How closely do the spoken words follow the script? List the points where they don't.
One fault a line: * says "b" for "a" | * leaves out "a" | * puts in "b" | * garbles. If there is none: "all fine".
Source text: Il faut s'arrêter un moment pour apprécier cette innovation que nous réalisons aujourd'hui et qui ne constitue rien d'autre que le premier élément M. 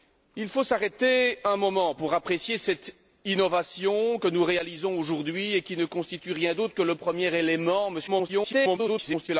* garbles